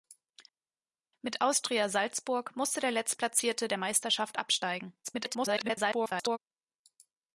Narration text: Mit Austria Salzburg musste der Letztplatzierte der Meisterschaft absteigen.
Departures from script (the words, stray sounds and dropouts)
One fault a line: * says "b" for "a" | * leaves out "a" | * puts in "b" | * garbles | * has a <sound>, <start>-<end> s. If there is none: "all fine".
* garbles